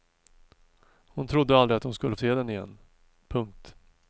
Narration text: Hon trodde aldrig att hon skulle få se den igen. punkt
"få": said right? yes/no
no